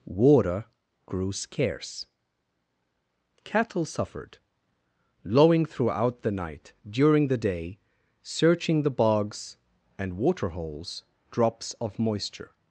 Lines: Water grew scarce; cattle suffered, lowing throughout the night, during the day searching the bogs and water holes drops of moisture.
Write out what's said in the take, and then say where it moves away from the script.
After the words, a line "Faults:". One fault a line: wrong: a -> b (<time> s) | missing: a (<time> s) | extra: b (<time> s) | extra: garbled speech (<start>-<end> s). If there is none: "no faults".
Water grew scarce; cattle suffered, lowing throughout the night, during the day searching the bogs and water holes drops of moisture.
Faults:
no faults